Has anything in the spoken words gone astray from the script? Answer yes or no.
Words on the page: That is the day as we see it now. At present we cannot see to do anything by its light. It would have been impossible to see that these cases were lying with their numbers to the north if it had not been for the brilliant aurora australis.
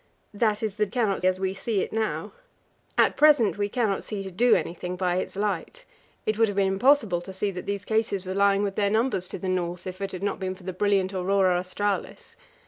yes